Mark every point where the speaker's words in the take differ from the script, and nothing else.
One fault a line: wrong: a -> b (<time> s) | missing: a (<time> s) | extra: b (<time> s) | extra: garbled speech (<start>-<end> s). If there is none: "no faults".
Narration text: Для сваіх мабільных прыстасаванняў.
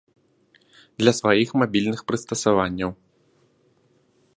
no faults